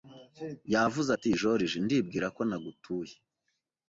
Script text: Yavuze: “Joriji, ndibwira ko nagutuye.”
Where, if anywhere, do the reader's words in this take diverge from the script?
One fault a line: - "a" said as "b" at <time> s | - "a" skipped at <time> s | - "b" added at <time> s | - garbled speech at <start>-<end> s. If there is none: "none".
- "ati" added at 1.1 s